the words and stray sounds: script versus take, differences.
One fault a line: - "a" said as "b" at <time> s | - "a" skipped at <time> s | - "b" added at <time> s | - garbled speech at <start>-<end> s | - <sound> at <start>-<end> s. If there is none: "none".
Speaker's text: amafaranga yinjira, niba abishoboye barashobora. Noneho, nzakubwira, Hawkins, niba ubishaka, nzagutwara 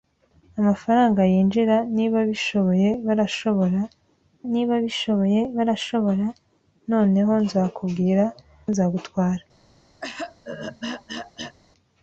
- "Noneho nzakubwira Hawkins niba ubishaka" said as "niba abishoboye barashobora Noneho nzakubwira" at 4.5 s
- throat clearing at 10.0-11.6 s